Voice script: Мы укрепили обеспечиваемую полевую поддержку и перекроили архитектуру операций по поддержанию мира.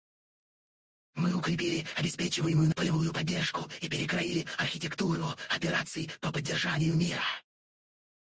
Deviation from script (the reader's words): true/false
false